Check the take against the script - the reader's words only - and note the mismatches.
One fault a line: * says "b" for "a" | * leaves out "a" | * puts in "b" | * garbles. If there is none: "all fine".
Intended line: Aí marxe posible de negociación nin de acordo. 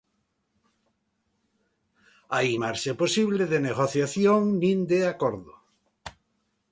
all fine